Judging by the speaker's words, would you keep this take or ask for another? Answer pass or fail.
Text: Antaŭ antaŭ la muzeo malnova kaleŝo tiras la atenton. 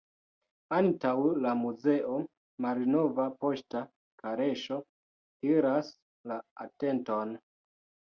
fail